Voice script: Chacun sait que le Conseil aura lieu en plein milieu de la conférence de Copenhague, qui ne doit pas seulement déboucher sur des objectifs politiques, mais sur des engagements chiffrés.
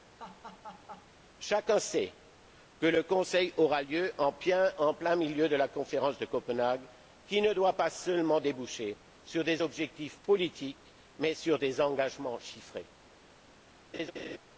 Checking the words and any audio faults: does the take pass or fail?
fail